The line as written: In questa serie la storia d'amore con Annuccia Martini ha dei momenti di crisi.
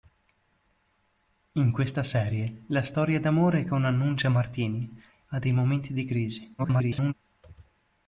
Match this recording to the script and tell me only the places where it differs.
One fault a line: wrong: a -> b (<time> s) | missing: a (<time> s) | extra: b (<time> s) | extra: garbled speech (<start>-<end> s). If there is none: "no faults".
extra: garbled speech (6.6-7.1 s)